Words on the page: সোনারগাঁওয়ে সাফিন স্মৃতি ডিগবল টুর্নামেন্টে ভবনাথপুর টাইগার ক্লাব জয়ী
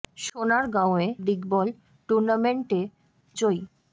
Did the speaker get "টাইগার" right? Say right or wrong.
wrong